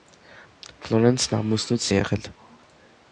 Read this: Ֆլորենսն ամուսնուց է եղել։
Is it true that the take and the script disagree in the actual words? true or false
false